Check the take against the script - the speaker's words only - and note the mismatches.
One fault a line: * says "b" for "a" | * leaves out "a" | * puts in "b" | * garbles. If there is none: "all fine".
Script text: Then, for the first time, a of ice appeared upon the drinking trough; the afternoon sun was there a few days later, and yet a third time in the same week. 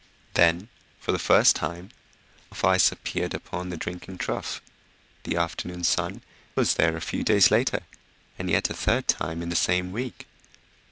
all fine